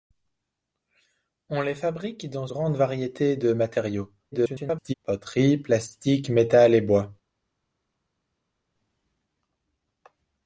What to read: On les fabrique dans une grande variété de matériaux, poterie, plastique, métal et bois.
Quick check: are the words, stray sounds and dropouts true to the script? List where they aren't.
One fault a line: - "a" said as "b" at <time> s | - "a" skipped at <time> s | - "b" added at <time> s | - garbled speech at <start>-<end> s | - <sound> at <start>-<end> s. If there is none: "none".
- "une" skipped at 2.5 s
- garbled speech at 4.3-4.9 s